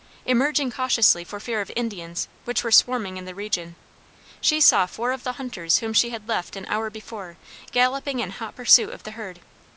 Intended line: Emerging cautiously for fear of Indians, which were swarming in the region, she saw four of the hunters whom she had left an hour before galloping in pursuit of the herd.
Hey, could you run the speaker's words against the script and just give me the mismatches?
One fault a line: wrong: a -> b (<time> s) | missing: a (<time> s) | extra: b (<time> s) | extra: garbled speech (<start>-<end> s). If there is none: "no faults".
extra: hot (8.3 s)